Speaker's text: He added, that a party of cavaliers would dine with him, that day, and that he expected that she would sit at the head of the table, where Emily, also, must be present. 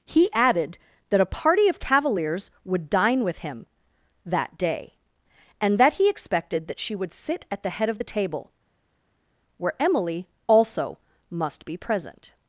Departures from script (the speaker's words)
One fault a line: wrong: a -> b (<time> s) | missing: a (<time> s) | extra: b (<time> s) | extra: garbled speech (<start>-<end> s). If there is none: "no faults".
no faults